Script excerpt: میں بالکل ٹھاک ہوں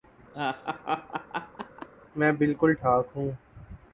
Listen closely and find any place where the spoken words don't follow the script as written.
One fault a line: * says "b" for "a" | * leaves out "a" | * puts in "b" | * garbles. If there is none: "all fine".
all fine